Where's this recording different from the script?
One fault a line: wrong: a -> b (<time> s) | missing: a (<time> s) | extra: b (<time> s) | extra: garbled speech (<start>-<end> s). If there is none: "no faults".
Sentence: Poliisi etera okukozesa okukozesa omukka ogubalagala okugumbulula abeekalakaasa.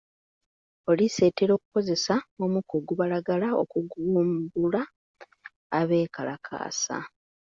missing: okukozesa (2.2 s)